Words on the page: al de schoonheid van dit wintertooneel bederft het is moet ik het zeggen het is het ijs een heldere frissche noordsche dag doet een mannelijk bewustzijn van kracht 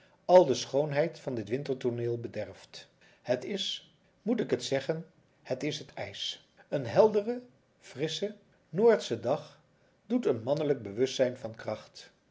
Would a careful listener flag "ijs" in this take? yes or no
no